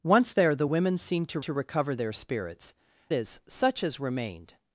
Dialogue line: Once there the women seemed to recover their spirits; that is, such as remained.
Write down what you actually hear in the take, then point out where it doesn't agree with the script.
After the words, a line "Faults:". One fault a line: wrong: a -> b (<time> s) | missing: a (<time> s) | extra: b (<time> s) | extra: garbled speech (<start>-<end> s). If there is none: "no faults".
Once there the women seemed to to recover their spirits; is, such as remained.
Faults:
extra: to (1.4 s)
missing: that (2.7 s)